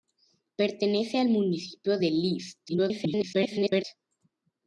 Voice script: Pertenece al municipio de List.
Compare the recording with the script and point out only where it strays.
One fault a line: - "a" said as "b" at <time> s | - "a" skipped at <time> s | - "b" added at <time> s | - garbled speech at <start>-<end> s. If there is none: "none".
- garbled speech at 2.7-3.8 s